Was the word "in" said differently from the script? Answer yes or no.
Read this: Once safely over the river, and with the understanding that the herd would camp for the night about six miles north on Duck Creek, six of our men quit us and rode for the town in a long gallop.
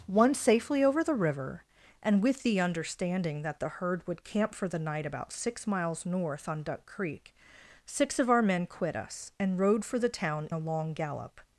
yes